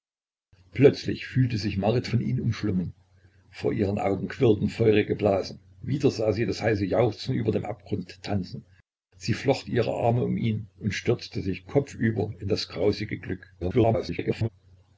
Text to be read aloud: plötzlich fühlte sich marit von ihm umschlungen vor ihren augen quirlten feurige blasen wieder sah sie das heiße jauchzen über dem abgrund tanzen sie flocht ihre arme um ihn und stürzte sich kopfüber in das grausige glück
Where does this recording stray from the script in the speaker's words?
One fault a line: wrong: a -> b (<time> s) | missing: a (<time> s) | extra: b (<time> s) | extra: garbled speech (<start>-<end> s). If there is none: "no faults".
extra: garbled speech (13.6-14.5 s)